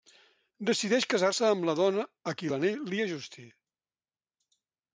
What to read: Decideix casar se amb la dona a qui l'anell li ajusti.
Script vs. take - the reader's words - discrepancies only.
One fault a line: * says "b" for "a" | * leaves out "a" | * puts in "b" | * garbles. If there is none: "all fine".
all fine